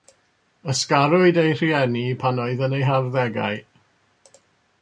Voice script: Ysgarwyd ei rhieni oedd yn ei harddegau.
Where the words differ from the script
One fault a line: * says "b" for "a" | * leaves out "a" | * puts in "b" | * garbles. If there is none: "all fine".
* puts in "pan"